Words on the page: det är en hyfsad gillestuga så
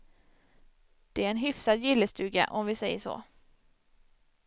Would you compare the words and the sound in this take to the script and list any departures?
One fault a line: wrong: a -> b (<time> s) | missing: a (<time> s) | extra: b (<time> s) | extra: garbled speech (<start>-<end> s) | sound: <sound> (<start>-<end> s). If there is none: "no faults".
extra: om vi säger (2.5 s)